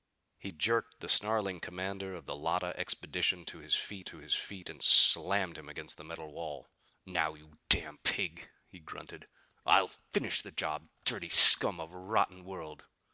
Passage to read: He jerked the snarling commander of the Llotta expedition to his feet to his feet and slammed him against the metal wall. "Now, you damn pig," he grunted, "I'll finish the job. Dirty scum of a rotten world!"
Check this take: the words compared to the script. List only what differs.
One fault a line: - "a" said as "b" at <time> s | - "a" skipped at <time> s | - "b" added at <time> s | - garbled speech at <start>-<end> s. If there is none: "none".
none